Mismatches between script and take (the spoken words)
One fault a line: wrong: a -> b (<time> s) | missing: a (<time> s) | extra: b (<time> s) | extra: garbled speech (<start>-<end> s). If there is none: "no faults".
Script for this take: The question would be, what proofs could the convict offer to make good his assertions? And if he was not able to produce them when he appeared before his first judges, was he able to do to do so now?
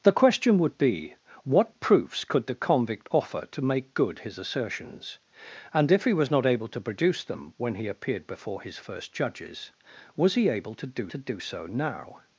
no faults